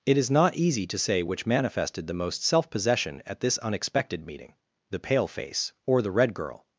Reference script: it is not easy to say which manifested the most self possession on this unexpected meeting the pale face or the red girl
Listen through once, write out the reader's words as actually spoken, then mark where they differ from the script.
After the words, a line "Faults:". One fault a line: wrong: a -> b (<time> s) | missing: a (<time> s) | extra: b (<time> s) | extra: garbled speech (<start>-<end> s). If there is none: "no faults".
it is not easy to say which manifested the most self possession at this unexpected meeting the pale face or the red girl
Faults:
wrong: on -> at (3.2 s)